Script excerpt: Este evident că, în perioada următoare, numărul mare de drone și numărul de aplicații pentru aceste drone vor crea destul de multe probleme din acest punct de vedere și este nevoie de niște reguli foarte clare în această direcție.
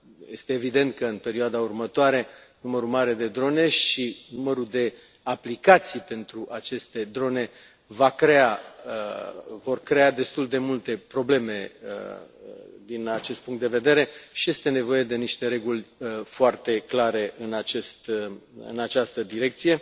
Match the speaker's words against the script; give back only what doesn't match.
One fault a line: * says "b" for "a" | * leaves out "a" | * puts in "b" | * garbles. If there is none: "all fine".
all fine